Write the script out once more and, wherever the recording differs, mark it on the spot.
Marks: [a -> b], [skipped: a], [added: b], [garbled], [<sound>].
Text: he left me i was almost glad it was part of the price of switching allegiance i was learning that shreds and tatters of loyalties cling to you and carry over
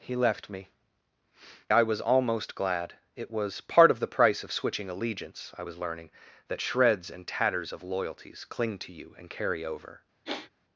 he left me i was almost glad it was part of the price of switching allegiance i was learning that shreds and tatters of loyalties cling to you and carry over [sigh]